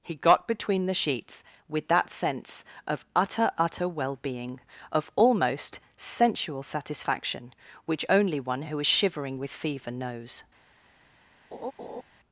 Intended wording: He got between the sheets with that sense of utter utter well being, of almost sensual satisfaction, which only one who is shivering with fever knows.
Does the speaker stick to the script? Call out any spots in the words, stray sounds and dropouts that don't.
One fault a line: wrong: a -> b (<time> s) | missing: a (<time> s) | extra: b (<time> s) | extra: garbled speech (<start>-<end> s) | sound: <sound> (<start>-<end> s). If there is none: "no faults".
sound: laugh (11.5-12.0 s)